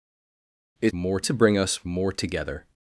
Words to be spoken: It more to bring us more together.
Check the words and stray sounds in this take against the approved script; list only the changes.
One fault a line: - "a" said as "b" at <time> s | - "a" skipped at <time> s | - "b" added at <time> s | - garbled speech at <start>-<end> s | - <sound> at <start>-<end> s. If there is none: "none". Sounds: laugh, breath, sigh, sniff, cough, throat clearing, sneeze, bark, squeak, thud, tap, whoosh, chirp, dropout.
none